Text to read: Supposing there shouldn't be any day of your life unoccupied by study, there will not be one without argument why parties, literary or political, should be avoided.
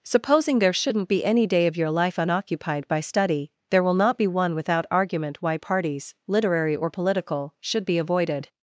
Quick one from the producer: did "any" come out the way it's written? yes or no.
yes